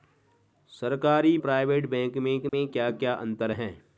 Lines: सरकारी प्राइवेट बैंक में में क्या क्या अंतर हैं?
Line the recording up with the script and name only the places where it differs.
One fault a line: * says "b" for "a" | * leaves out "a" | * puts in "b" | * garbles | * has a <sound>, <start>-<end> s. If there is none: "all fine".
* has a dropout, 2.5-2.5 s